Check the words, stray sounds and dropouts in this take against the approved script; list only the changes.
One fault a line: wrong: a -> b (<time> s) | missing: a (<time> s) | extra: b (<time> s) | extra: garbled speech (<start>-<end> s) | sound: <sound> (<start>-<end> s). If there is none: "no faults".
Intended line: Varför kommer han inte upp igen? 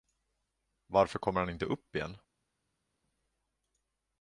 no faults